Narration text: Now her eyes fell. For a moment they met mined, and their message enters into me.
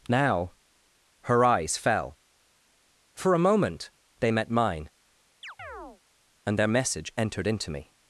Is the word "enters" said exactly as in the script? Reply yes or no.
no